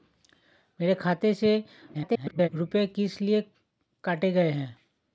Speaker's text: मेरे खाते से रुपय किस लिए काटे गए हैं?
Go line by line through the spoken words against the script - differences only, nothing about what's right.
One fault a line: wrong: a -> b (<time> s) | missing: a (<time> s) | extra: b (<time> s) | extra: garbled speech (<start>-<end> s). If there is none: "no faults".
extra: garbled speech (1.9-2.5 s)